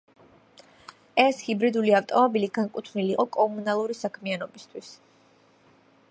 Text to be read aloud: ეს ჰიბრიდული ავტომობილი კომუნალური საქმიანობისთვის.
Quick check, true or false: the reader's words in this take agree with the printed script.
false